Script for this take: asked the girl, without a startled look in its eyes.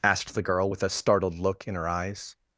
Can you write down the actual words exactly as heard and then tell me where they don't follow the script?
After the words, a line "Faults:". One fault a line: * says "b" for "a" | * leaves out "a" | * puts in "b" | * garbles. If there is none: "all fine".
asked the girl, with a startled look in her eyes.
Faults:
* says "with" for "without"
* says "her" for "its"